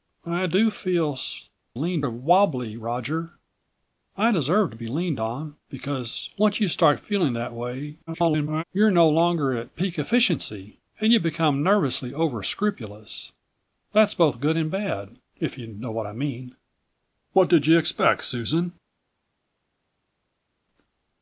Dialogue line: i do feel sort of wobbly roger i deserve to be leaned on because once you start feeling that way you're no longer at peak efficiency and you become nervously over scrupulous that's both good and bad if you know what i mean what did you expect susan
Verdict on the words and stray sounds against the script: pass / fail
fail